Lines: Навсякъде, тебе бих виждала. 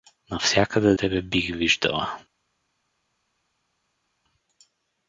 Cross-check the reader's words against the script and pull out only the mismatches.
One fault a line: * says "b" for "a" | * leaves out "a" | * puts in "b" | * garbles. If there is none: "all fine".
all fine